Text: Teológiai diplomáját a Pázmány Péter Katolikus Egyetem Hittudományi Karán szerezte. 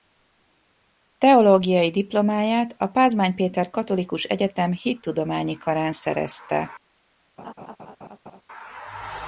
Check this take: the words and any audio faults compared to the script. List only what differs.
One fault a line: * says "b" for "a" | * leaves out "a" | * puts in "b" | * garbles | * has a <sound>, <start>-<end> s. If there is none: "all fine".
* has a laugh, 7.4-8.4 s